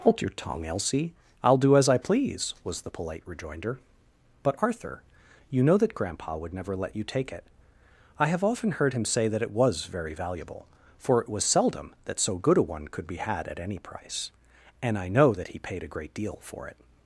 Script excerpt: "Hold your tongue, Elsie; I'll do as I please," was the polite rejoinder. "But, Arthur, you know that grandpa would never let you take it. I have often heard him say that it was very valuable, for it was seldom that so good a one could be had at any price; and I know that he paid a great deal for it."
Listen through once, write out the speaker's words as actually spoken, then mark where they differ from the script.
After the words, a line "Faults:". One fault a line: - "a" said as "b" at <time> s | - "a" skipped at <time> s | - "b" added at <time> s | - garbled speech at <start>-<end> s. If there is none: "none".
"Hold your tongue, Elsie; I'll do as I please," was the polite rejoinder. "But, Arthur, you know that grandpa would never let you take it. I have often heard him say that it was very valuable, for it was seldom that so good a one could be had at any price; and I know that he paid a great deal for it."
Faults:
none